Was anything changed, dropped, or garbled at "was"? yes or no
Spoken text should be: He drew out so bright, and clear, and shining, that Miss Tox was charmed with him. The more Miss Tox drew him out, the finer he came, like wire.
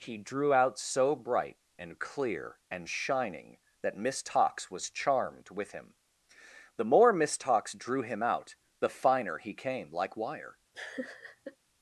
no